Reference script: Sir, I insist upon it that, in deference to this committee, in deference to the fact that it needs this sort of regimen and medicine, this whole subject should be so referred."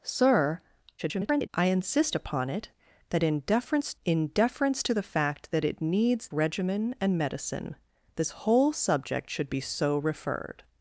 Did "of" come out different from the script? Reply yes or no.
yes